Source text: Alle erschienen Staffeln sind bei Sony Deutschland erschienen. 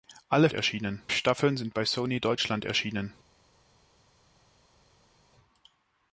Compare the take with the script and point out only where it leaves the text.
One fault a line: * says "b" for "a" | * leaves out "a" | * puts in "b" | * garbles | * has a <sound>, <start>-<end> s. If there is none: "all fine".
all fine